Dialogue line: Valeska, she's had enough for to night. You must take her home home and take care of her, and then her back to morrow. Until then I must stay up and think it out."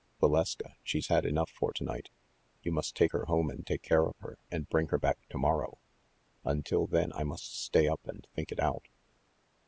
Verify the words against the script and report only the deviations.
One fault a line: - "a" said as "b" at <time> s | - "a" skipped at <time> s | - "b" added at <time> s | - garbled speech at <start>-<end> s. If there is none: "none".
- "home" skipped at 3.5 s
- "then" said as "bring" at 4.7 s